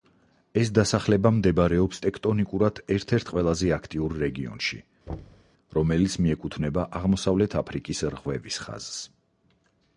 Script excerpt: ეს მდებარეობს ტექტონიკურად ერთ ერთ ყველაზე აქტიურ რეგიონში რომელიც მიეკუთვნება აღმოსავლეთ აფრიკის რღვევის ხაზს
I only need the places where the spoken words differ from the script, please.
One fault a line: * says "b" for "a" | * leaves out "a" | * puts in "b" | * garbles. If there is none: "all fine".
* puts in "დასახლება"